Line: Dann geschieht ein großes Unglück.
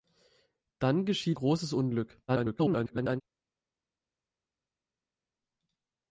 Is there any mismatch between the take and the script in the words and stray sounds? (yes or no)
yes